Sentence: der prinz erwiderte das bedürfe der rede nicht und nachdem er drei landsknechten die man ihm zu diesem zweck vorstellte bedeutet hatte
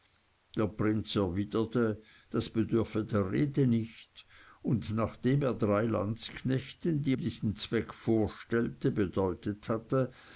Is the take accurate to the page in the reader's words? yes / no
no